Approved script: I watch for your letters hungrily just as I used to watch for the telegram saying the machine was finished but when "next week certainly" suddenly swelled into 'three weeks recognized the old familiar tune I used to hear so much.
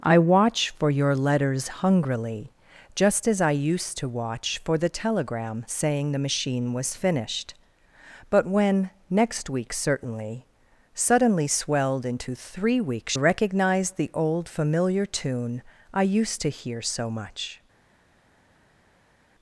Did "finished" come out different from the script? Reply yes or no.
no